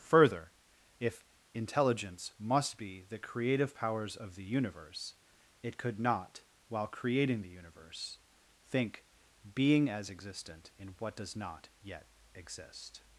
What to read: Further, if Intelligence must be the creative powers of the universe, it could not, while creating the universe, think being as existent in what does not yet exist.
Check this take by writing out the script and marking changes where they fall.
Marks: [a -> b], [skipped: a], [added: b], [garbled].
Further, if Intelligence must be the creative powers of the universe, it could not, while creating the universe, think being as existent in what does not yet exist.